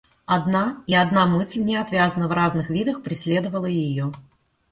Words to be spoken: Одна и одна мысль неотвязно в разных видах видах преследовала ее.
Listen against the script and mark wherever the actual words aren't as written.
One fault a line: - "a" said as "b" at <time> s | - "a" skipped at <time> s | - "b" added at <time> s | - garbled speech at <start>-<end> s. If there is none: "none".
- "видах" skipped at 3.0 s